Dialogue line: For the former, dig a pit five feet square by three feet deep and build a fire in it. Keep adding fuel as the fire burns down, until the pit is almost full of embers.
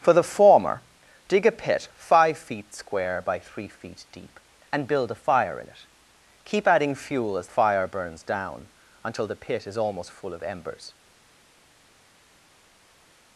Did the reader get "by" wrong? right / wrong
right